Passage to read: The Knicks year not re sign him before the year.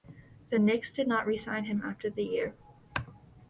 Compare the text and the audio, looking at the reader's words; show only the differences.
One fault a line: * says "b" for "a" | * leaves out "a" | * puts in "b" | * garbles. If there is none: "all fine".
* says "did" for "year"
* says "after" for "before"